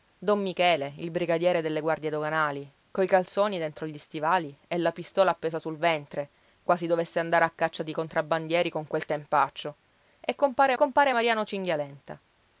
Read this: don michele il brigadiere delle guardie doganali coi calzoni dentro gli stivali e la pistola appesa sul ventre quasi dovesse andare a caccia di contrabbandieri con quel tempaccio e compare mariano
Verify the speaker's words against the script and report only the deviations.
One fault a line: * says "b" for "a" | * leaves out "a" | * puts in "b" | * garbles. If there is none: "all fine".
* puts in "compare"